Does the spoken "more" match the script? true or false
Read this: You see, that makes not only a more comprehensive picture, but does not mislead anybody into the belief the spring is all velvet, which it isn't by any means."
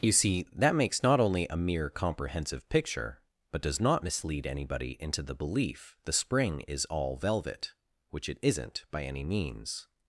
false